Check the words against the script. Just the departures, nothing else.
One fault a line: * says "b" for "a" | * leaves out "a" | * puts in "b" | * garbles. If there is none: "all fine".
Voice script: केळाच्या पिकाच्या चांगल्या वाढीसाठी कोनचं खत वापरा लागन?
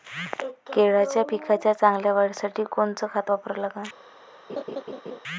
all fine